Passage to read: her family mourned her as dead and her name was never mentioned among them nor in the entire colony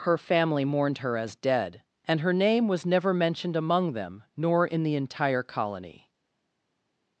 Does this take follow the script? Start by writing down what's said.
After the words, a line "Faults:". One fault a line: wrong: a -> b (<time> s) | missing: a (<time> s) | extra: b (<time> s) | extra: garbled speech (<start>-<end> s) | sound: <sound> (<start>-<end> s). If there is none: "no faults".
her family mourned her as dead and her name was never mentioned among them nor in the entire colony
Faults:
no faults